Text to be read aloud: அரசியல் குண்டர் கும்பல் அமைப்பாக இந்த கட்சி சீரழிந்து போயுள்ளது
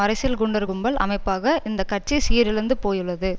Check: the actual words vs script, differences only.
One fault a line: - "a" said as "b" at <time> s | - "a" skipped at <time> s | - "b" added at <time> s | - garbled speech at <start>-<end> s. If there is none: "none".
none